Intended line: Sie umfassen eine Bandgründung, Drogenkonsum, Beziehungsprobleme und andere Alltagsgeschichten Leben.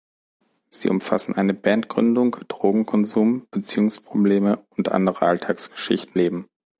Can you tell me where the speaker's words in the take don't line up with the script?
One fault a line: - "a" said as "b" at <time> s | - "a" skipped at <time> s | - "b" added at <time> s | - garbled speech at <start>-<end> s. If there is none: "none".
none